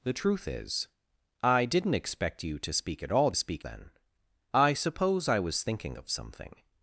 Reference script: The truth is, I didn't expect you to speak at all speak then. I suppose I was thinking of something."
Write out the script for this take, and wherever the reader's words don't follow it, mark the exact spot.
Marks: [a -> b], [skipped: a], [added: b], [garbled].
The truth is, I didn't expect you to speak at all speak then. I suppose I was thinking of something."